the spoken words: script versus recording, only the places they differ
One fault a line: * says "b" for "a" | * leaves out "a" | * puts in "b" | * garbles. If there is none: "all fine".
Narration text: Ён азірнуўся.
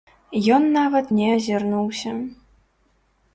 * puts in "нават не"